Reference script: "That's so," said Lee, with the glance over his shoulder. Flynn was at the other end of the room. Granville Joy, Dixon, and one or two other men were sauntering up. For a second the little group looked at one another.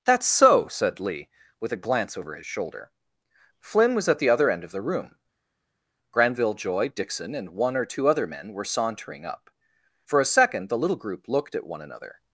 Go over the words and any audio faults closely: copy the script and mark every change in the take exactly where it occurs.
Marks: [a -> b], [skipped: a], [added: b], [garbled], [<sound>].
"That's so," said Lee, with [the -> a] glance over his shoulder. Flynn was at the other end of the room. Granville Joy, Dixon, and one or two other men were sauntering up. For a second the little group looked at one another.